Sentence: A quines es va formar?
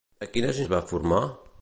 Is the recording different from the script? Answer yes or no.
no